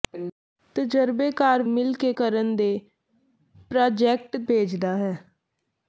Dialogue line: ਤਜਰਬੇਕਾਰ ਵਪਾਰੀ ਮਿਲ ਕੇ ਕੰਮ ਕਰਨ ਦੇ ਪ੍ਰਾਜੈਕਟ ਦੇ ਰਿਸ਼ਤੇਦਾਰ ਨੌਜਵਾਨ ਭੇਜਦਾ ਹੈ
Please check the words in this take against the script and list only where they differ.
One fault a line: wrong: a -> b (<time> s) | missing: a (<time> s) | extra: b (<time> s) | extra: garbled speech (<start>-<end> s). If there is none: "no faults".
missing: ਵਪਾਰੀ (1.6 s)
missing: ਕੰਮ (2.1 s)
missing: ਦੇ ਰਿਸ਼ਤੇਦਾਰ ਨੌਜਵਾਨ (4.4 s)